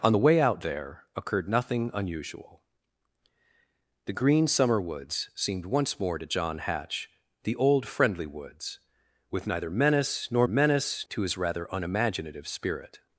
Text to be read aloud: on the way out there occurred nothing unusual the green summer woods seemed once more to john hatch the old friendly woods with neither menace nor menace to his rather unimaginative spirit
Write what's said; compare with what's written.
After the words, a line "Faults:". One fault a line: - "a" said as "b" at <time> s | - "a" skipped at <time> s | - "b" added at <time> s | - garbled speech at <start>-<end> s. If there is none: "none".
on the way out there occurred nothing unusual the green summer woods seemed once more to john hatch the old friendly woods with neither menace nor menace to his rather unimaginative spirit
Faults:
none